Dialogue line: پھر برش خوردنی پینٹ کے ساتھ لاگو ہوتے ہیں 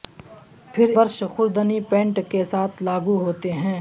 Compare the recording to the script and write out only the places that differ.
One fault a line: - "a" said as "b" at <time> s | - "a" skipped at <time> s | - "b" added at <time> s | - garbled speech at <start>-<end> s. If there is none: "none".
none